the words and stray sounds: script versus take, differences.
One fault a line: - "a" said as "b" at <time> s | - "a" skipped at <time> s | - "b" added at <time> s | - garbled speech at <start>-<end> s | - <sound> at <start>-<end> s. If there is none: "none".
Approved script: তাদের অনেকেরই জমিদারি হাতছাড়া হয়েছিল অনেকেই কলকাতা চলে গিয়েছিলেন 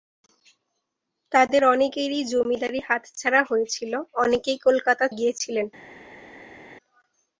- "চলে" skipped at 5.0 s